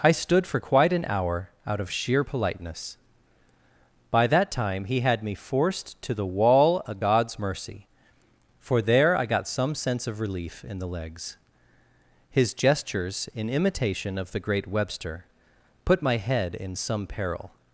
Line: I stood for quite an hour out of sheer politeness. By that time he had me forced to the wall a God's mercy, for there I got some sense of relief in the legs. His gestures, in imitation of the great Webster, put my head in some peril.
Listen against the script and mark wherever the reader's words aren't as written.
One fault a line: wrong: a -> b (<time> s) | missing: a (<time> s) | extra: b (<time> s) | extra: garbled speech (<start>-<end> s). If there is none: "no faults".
wrong: a -> of (6.9 s)